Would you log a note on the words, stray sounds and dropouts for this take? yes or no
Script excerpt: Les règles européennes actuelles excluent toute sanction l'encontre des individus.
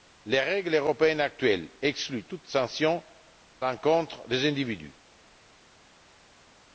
no